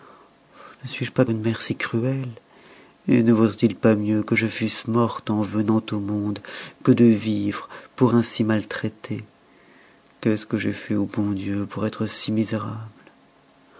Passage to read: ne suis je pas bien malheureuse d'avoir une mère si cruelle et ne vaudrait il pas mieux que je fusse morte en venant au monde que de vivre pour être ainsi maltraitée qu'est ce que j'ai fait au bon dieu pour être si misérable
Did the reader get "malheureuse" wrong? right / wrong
wrong